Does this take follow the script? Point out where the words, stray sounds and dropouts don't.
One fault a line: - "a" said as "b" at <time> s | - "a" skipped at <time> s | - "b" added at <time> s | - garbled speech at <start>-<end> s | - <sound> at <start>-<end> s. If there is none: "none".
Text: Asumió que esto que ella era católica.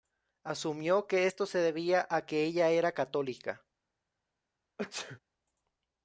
- "se debía a" added at 1.4 s
- sneeze at 4.8-5.2 s